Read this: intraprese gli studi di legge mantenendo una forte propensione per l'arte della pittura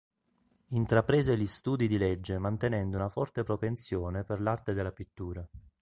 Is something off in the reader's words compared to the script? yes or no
no